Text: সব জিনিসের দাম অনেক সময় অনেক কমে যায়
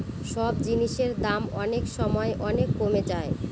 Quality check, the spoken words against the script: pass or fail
pass